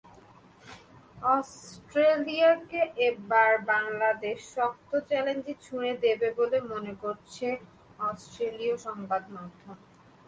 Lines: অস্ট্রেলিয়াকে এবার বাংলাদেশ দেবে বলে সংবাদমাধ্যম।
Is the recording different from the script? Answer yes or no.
yes